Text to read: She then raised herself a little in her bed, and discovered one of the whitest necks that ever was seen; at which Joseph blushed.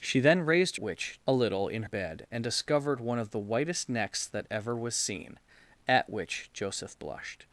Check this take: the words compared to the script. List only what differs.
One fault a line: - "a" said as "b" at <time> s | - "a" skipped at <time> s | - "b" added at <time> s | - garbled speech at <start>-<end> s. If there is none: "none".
- "herself" said as "which" at 0.8 s
- "her" skipped at 1.8 s